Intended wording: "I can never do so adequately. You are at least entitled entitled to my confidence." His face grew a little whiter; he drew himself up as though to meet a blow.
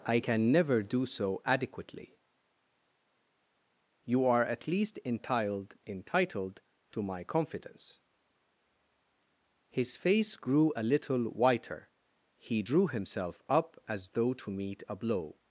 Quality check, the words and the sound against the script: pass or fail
pass